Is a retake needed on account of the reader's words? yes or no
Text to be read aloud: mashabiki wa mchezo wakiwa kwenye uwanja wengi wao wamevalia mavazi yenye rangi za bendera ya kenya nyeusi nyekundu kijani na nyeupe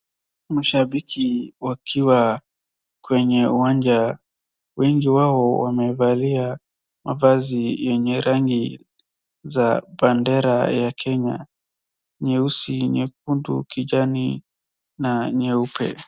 yes